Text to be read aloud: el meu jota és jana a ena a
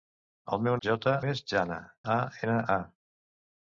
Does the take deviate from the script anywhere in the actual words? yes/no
no